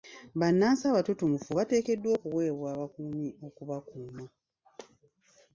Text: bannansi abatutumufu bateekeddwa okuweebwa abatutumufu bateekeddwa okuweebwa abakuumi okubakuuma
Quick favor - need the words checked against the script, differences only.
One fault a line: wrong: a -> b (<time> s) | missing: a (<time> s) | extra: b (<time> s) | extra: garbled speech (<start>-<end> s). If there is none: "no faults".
missing: abatutumufu bateekeddwa okuweebwa (2.7 s)